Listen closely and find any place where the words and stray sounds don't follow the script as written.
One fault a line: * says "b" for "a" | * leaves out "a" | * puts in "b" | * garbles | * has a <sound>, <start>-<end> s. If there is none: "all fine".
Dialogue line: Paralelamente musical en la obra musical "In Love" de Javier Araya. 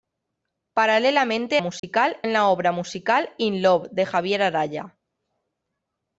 * has a dropout, 1.8-1.8 s